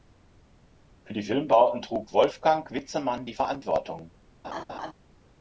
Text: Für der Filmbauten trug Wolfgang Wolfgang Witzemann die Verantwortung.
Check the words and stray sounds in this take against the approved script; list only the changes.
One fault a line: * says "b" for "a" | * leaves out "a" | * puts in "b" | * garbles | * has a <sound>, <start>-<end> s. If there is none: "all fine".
* says "die" for "der"
* leaves out "Wolfgang"
* has a laugh, 4.4-4.9 s